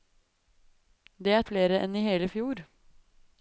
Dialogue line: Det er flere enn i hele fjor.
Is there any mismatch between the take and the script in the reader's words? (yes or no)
no